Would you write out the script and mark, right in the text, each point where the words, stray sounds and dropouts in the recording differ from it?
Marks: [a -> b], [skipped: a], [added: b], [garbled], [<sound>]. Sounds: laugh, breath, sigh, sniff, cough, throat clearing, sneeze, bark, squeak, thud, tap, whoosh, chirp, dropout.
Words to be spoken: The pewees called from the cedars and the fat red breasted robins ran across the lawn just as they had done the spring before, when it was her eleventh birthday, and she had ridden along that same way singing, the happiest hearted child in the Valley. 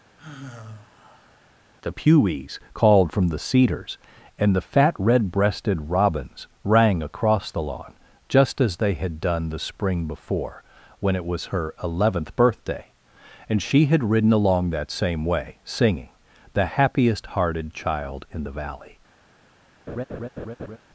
[sigh] The pewees called from the cedars and the fat red breasted robins [ran -> rang] across the lawn just as they had done the spring before, when it was her eleventh birthday, and she had ridden along that same way singing, the happiest hearted child in the Valley. [laugh]